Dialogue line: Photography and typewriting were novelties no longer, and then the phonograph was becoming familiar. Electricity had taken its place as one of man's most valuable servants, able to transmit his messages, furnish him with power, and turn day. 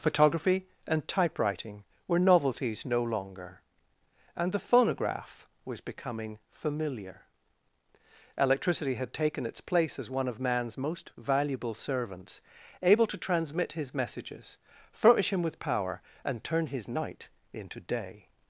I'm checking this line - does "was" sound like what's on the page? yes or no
yes